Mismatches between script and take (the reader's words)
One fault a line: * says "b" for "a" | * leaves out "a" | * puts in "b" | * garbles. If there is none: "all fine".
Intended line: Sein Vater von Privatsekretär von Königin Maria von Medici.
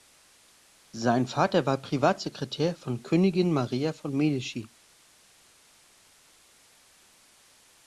* says "war" for "von"